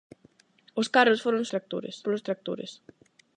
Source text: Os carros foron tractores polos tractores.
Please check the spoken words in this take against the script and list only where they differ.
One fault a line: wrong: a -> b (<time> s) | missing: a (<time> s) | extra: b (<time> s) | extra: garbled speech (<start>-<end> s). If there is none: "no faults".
no faults